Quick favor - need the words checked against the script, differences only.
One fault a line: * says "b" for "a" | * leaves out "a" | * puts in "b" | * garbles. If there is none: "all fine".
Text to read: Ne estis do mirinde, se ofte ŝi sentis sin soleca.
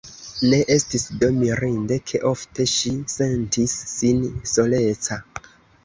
* says "ke" for "se"